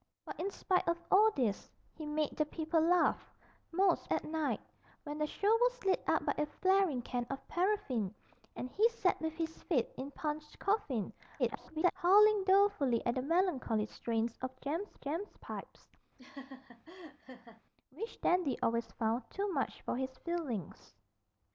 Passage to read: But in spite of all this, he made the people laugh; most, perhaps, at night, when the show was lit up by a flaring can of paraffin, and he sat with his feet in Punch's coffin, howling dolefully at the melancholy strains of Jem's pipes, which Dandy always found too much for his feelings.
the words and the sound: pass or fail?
fail